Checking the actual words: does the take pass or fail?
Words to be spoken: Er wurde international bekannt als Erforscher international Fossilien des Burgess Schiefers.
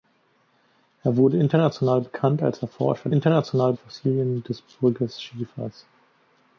pass